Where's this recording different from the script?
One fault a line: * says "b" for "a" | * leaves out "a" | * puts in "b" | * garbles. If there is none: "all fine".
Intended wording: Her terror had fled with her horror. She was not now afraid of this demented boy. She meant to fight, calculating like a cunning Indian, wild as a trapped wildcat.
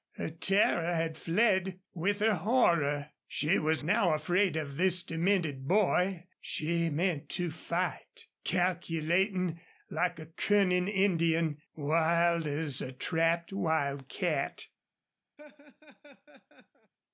* leaves out "not"